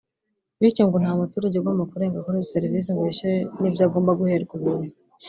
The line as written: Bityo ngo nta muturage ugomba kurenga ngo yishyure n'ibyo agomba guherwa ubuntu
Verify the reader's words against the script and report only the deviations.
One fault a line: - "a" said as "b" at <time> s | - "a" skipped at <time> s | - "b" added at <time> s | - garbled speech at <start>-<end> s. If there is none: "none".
- "kuri izo serivisi" added at 2.2 s